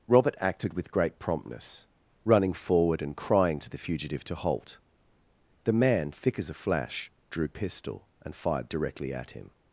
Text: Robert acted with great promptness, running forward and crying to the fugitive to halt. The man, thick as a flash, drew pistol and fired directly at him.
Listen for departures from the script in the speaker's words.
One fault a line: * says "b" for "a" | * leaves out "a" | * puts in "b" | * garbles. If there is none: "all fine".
all fine